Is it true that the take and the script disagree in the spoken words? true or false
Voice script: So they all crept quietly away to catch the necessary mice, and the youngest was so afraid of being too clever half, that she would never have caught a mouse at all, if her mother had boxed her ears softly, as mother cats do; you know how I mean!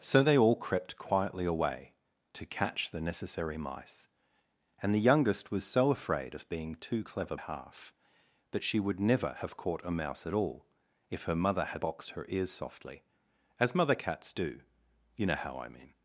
false